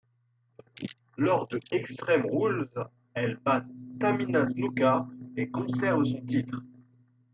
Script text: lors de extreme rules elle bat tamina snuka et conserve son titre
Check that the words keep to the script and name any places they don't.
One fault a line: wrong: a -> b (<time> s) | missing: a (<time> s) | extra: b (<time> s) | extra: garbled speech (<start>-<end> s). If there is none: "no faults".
no faults